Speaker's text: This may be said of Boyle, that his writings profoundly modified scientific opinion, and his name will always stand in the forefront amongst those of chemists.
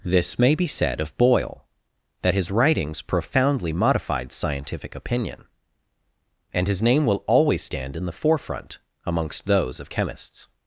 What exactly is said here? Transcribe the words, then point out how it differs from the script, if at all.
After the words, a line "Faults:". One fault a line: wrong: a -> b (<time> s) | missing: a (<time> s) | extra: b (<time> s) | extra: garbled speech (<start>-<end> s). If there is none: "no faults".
This may be said of Boyle, that his writings profoundly modified scientific opinion, and his name will always stand in the forefront amongst those of chemists.
Faults:
no faults